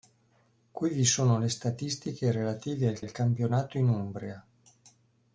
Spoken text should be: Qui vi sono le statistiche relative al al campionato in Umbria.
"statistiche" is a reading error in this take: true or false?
false